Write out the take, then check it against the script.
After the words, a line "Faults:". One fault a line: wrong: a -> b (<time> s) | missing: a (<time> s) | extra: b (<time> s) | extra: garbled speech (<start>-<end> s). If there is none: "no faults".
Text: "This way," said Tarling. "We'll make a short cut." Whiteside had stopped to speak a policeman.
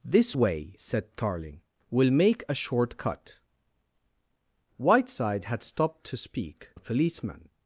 "This way," said Tarling. "We'll make a short cut." Whiteside had stopped to speak a policeman.
Faults:
no faults